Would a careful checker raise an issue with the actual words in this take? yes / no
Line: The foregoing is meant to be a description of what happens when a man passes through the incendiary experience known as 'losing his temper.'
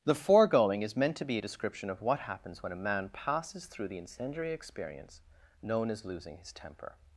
no